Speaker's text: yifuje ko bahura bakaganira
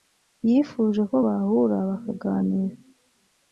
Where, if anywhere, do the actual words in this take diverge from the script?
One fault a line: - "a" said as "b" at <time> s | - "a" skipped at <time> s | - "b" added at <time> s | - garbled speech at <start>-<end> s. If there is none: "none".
none